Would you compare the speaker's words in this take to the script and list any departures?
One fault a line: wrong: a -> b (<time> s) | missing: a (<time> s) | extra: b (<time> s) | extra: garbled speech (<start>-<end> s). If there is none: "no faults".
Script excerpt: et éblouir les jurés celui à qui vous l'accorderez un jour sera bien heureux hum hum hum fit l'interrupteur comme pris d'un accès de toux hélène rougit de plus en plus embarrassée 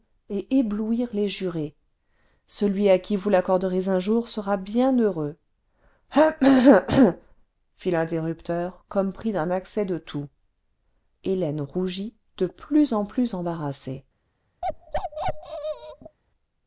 no faults